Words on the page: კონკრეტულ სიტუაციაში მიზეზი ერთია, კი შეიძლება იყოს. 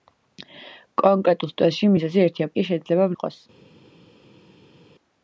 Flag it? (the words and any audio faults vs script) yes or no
no